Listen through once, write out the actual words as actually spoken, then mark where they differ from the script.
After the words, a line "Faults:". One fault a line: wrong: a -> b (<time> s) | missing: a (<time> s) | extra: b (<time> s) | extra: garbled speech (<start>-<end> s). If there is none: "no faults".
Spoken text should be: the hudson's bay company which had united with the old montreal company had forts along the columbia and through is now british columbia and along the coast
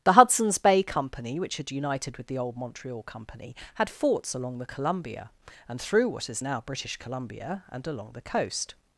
the hudson's bay company which had united with the old montreal company had forts along the columbia and through what is now british columbia and along the coast
Faults:
extra: what (6.1 s)